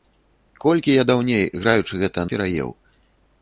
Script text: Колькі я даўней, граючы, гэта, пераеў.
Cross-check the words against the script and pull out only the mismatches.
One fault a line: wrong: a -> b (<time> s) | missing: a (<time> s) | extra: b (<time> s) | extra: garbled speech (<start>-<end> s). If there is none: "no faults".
no faults